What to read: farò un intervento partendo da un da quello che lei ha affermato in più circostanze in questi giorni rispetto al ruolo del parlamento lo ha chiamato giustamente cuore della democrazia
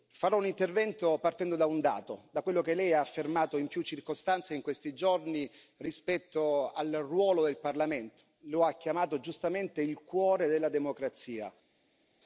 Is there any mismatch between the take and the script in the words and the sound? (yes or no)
yes